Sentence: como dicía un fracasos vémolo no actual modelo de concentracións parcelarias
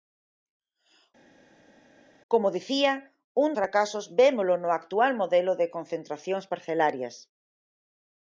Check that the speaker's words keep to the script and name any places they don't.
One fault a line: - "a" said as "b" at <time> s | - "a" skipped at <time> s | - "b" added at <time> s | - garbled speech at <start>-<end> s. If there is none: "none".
none